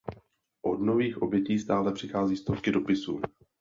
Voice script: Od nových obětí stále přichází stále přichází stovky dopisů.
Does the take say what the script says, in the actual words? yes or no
no